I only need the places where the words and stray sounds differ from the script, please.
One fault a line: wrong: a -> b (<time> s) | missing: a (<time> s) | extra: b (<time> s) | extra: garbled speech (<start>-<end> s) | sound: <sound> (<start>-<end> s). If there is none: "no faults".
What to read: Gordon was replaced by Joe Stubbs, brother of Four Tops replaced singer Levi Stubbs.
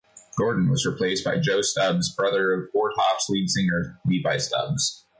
wrong: replaced -> lead (3.3 s)